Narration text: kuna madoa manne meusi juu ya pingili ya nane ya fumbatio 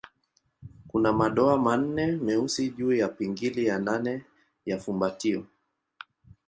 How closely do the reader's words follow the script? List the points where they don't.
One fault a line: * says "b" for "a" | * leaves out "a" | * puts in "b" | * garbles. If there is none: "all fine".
all fine